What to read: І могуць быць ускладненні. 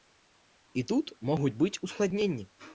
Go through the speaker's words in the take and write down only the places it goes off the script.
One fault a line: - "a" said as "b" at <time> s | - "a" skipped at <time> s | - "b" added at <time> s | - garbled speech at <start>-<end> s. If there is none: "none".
- "тут" added at 0.9 s